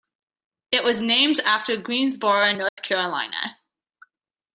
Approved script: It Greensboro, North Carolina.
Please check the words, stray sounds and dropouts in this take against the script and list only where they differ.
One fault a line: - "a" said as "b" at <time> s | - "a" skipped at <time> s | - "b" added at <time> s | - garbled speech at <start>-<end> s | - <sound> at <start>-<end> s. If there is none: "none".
- "was named after" added at 0.8 s
- dropout at 2.7-2.8 s